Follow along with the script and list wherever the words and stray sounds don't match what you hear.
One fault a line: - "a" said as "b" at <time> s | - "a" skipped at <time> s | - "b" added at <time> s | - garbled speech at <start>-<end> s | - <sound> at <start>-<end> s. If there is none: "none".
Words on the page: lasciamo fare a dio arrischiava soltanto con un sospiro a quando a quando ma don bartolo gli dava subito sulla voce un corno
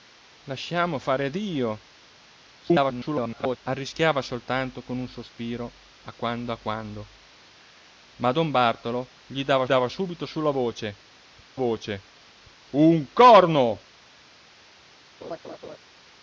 - garbled speech at 2.6-3.6 s
- "dava" added at 9.6 s
- "voce" added at 11.5 s
- laugh at 15.2-15.8 s